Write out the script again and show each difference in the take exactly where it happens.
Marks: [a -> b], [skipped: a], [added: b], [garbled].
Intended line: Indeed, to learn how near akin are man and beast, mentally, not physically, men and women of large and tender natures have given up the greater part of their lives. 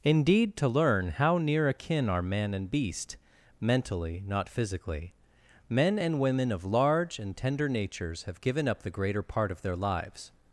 Indeed, to learn how near akin are man and beast, mentally, not physically, men and women of large and tender natures have given up the greater part of their lives.